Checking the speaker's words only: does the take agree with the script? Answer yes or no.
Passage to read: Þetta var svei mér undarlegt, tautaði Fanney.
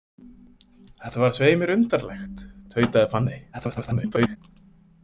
no